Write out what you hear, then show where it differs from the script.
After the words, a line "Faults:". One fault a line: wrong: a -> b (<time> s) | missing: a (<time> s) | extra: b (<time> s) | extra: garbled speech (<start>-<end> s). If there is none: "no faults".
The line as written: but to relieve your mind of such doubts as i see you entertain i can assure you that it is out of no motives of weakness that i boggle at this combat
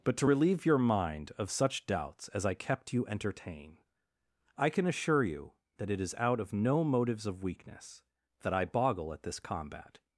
but to relieve your mind of such doubts as i kept you entertain i can assure you that it is out of no motives of weakness that i boggle at this combat
Faults:
wrong: see -> kept (2.5 s)